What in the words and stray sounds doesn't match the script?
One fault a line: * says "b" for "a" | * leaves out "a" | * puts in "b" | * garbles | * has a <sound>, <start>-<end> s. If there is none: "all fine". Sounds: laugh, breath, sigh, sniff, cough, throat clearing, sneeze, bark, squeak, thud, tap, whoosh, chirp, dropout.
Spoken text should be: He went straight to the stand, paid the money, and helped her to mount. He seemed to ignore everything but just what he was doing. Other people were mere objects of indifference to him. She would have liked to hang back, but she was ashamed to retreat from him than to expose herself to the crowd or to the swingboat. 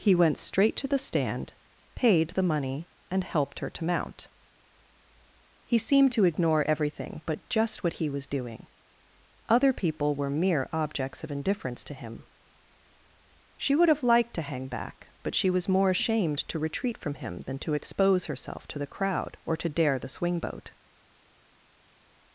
* puts in "more"
* puts in "dare"